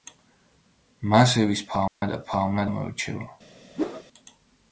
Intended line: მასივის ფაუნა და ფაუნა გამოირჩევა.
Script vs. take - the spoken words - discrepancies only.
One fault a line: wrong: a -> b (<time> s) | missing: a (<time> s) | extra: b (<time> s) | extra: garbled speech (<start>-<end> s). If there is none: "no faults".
no faults